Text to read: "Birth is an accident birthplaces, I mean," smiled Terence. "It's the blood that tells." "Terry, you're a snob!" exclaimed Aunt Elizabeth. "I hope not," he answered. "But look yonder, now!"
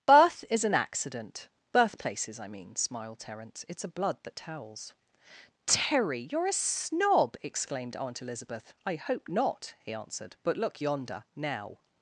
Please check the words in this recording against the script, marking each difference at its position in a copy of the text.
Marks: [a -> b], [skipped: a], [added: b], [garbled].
"Birth is an accident birthplaces, I mean," smiled Terence. "It's [the -> a] blood that tells." "Terry, you're a snob!" exclaimed Aunt Elizabeth. "I hope not," he answered. "But look yonder, now!"